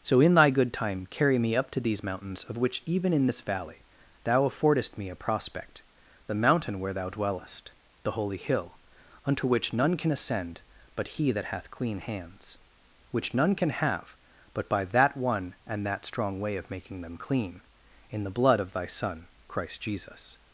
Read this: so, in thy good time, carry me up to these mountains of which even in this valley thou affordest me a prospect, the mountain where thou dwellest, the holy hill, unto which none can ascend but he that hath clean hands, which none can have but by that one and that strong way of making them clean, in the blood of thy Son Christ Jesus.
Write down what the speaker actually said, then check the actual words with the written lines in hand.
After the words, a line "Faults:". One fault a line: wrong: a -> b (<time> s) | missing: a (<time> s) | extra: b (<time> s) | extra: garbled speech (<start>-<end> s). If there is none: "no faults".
so, in thy good time, carry me up to these mountains of which even in this valley thou affordest me a prospect, the mountain where thou dwellest, the holy hill, unto which none can ascend but he that hath clean hands, which none can have but by that one and that strong way of making them clean, in the blood of thy Son Christ Jesus.
Faults:
no faults